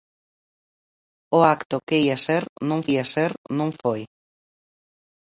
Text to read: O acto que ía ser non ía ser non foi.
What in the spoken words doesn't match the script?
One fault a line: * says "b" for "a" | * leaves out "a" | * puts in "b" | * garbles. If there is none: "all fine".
all fine